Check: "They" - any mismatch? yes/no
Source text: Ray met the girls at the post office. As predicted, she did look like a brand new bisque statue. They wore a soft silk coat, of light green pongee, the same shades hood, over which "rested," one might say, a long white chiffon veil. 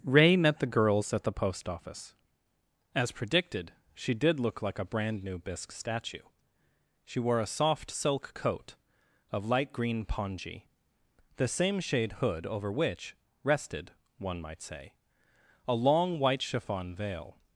yes